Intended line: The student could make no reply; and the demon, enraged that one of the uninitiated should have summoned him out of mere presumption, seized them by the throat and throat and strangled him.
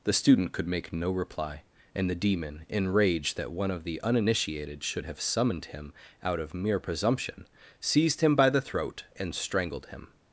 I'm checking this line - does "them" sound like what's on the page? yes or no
no